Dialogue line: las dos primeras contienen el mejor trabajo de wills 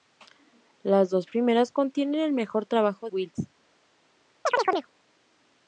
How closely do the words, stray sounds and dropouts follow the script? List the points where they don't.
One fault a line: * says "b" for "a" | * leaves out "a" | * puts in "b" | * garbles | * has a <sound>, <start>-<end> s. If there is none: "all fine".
* leaves out "de"
* has a chirp, 4.5-4.9 s